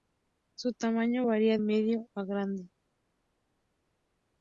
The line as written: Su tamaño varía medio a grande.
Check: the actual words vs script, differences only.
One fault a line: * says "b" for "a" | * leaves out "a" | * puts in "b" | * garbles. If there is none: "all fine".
all fine